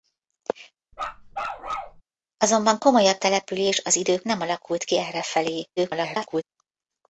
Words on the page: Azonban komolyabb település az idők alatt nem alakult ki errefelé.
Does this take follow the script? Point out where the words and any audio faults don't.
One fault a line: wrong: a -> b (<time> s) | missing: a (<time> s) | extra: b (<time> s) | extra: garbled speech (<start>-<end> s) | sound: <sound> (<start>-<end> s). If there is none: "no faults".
sound: bark (0.9-2.0 s)
missing: alatt (4.3 s)
extra: garbled speech (5.8-6.4 s)